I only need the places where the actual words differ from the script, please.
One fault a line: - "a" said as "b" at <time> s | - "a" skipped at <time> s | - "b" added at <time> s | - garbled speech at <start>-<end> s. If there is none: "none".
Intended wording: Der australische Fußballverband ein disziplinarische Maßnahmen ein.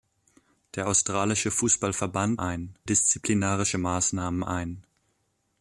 none